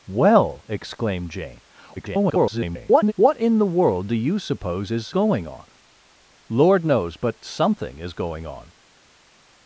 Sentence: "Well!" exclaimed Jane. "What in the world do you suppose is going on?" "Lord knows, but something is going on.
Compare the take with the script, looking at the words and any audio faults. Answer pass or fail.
fail